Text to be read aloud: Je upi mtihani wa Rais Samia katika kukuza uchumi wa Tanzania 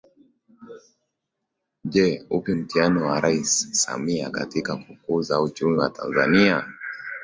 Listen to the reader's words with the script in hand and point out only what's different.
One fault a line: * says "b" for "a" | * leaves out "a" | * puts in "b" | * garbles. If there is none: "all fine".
all fine